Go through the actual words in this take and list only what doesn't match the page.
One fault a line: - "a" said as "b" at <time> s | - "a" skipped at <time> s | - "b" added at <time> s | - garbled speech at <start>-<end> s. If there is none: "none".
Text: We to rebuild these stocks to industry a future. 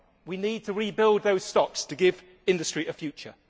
- "need" added at 0.4 s
- "these" said as "those" at 1.2 s
- "give" added at 1.9 s